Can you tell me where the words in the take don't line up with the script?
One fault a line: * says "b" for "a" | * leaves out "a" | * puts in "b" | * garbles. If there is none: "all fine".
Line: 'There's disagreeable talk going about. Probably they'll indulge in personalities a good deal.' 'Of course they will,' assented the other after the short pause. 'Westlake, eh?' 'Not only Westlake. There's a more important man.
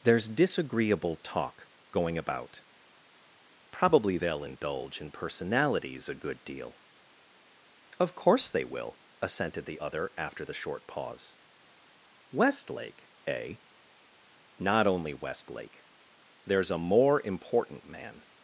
all fine